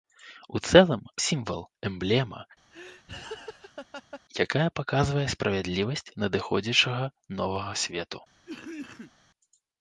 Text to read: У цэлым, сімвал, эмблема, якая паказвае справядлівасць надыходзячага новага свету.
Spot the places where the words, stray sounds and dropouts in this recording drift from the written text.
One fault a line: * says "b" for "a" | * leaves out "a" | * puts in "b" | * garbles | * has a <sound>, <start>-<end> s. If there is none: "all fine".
* has a laugh, 2.7-4.2 s
* has a cough, 8.4-9.1 s